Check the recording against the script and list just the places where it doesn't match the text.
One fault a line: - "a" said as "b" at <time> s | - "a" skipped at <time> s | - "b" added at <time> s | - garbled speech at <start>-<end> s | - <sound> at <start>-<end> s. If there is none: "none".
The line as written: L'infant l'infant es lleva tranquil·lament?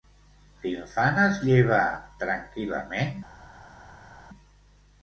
- "l'infant" skipped at 1.2 s